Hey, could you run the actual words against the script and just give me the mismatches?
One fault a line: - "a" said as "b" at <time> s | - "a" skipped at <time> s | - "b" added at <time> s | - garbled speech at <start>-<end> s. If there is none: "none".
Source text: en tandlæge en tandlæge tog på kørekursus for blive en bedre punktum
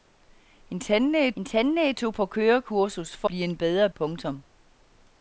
none